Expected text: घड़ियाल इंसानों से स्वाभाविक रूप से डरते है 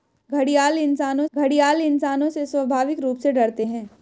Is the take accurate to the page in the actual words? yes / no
no